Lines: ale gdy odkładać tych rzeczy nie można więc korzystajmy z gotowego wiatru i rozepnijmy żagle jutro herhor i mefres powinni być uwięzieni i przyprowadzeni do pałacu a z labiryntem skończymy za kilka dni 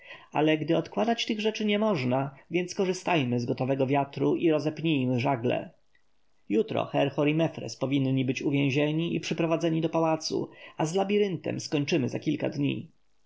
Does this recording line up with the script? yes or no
yes